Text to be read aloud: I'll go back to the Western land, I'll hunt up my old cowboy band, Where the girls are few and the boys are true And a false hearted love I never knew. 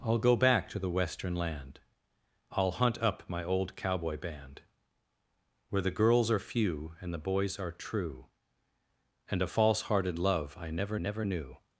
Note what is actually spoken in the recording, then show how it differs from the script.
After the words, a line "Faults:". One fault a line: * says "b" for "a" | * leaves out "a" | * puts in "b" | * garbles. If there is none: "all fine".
I'll go back to the Western land, I'll hunt up my old cowboy band, Where the girls are few and the boys are true And a false hearted love I never never knew.
Faults:
* puts in "never"